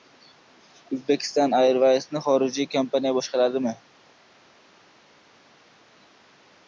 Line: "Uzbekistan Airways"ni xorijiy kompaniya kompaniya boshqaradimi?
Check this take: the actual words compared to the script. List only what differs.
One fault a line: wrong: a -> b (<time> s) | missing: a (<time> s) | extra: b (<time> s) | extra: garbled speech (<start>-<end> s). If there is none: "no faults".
missing: kompaniya (3.2 s)